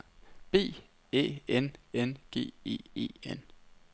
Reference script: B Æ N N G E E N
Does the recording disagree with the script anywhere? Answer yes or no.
no